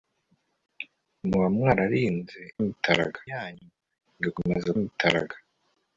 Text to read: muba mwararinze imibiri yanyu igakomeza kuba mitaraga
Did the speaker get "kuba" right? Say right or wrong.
wrong